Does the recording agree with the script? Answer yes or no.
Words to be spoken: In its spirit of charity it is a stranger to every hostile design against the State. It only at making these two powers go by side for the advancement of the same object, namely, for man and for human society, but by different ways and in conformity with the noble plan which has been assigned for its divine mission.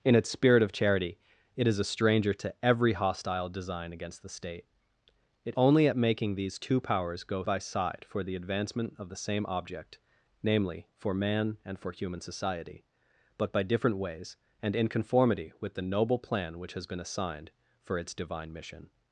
yes